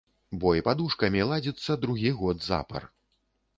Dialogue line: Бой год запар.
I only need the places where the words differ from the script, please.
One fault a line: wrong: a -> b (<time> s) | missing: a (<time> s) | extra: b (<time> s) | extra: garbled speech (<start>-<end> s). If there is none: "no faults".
extra: падушкамі ладзіцца другі (0.7 s)